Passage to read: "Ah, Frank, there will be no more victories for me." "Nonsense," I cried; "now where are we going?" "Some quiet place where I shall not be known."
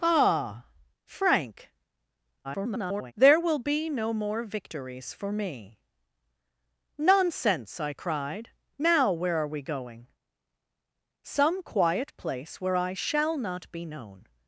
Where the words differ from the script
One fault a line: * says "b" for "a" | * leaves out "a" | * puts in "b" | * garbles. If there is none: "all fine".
* garbles